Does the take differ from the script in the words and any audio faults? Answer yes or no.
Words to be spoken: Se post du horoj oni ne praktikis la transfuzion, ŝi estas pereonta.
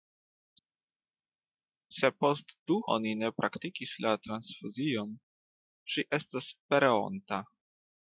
yes